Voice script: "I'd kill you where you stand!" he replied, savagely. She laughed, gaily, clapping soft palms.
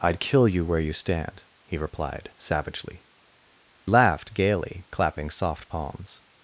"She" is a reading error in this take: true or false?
true